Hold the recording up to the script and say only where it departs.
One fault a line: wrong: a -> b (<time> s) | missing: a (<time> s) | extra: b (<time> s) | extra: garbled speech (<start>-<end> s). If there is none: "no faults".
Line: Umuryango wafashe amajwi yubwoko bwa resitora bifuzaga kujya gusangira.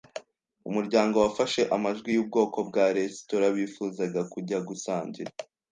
no faults